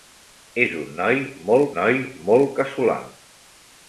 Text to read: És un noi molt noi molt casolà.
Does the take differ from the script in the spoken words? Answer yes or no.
no